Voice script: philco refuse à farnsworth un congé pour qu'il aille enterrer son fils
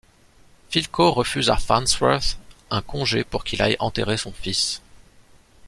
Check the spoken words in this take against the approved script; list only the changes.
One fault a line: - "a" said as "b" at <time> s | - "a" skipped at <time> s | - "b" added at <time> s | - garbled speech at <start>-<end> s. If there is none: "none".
none